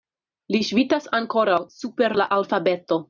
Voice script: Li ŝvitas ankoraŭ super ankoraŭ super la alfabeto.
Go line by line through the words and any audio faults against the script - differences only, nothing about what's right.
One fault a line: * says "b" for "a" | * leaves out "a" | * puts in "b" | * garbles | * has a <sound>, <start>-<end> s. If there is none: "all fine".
* leaves out "ankoraŭ super"